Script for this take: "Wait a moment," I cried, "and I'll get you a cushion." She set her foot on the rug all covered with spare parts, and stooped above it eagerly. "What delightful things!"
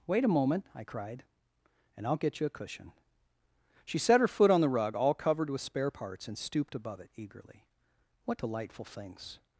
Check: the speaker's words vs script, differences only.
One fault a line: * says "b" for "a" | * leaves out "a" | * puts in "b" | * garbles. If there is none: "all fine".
all fine